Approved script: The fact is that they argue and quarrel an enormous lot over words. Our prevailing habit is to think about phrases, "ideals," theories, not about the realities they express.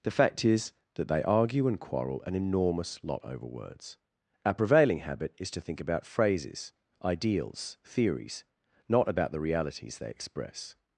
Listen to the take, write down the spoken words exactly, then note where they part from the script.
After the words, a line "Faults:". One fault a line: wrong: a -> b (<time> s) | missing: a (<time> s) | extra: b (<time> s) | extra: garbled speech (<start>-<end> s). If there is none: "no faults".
The fact is that they argue and quarrel an enormous lot over words. Our prevailing habit is to think about phrases, "ideals," theories, not about the realities they express.
Faults:
no faults